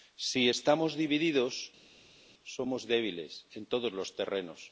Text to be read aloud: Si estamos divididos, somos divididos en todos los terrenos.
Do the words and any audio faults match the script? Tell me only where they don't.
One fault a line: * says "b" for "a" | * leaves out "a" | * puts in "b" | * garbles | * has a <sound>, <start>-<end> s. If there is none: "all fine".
* says "débiles" for "divididos"